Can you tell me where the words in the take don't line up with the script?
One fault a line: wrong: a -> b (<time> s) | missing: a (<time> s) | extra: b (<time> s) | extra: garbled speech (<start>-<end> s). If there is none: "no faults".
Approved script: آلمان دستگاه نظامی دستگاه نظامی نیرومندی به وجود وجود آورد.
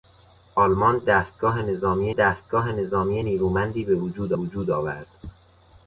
no faults